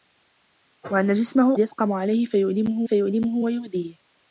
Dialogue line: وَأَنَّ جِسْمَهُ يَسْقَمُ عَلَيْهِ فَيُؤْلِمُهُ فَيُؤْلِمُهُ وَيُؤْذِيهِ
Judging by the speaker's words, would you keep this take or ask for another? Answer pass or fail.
pass